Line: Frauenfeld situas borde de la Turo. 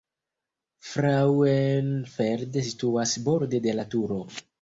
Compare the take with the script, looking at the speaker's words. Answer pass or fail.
pass